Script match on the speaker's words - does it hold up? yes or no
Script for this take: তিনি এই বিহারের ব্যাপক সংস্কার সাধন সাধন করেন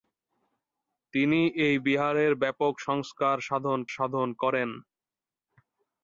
yes